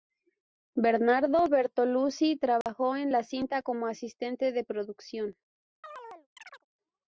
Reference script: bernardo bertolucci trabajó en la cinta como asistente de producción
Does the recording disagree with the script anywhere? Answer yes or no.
no